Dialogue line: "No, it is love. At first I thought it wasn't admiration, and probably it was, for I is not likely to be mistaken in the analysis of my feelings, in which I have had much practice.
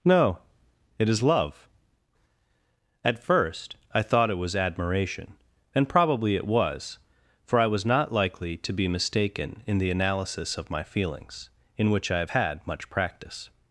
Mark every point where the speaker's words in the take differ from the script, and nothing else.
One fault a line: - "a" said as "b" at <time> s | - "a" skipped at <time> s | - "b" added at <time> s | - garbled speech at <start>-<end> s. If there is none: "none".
- "wasn't" said as "was" at 4.3 s
- "is" said as "was" at 7.7 s